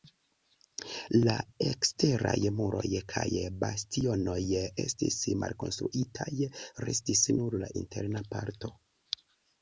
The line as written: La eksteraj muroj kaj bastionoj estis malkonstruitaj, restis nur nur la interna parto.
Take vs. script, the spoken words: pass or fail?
fail